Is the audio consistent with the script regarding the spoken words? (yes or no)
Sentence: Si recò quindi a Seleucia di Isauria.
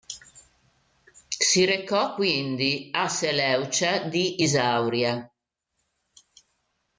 yes